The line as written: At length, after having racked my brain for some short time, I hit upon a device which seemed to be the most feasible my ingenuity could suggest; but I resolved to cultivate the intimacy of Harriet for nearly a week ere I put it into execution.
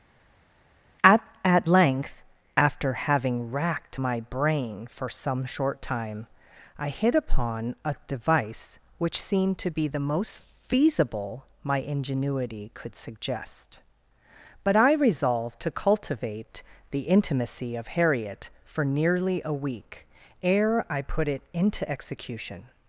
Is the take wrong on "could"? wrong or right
right